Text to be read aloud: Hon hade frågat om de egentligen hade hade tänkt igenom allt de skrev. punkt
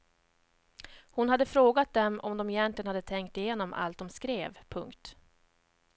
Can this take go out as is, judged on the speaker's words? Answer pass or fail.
fail